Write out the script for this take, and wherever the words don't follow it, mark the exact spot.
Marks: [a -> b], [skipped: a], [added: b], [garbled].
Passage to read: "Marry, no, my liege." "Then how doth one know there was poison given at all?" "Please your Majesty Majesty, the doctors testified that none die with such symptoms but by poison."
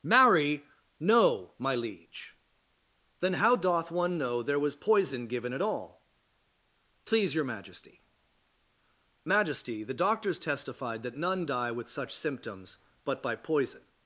"Marry, no, my liege." "Then how doth one know there was poison given at all?" "Please your Majesty Majesty, the doctors testified that none die with such symptoms but by poison."